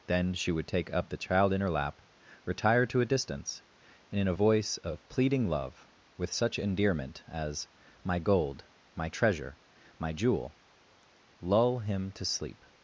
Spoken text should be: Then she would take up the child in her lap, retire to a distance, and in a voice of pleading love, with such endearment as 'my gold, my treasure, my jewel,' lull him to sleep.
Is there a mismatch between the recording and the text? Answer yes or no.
no